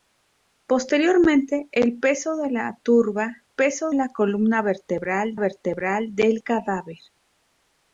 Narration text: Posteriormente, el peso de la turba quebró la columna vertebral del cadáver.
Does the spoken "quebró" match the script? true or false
false